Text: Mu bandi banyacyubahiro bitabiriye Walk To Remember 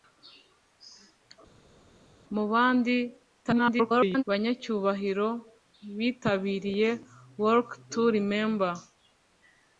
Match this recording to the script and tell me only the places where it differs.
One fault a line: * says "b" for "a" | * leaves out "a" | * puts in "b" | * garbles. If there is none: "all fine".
* garbles